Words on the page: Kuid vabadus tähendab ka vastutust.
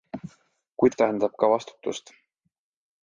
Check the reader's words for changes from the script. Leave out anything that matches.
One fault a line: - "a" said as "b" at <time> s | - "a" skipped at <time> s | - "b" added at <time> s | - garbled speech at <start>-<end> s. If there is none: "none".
- "vabadus" skipped at 1.0 s